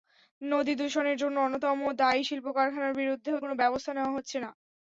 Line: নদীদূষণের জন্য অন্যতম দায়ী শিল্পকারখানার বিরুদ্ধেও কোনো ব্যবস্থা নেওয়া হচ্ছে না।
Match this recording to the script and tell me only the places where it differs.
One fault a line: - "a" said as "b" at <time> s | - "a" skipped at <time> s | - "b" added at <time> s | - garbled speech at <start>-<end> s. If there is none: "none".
none